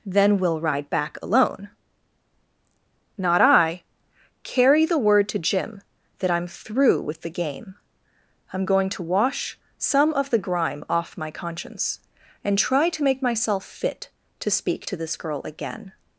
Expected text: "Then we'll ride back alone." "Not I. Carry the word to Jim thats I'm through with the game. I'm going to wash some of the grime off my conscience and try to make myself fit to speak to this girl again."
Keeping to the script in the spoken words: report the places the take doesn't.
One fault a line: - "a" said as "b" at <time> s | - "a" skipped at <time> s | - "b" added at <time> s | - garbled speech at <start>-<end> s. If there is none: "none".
- "thats" said as "that" at 6.2 s